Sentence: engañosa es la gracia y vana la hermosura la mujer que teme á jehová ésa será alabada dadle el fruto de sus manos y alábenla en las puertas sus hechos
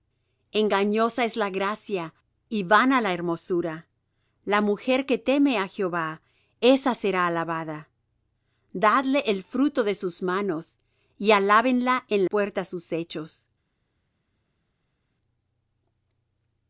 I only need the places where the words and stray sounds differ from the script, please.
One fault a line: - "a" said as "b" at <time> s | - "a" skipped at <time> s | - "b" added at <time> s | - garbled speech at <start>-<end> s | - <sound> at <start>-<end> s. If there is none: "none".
- "las" skipped at 12.2 s